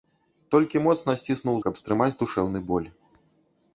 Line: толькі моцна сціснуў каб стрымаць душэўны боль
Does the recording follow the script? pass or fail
pass